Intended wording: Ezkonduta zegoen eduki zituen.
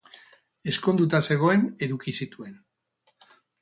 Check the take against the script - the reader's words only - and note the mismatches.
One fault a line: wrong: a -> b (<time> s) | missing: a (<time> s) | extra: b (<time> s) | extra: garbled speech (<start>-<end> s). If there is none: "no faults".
no faults